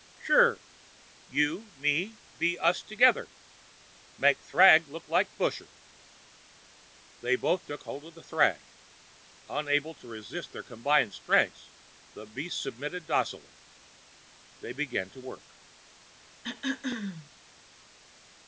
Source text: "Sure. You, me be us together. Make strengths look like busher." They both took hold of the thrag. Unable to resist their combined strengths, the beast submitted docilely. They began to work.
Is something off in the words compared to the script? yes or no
yes